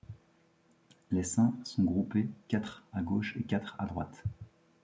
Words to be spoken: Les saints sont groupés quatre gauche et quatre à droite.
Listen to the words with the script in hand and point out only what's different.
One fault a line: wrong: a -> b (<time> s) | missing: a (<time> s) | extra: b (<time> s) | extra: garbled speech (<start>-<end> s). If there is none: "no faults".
extra: à (2.9 s)